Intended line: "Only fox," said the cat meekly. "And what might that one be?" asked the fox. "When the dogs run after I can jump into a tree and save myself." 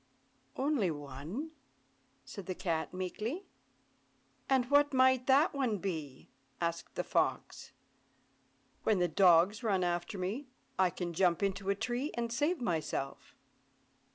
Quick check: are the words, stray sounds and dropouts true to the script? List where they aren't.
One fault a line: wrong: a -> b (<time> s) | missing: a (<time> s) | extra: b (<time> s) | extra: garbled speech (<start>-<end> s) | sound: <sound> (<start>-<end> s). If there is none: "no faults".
wrong: fox -> one (0.9 s)
extra: me (10.2 s)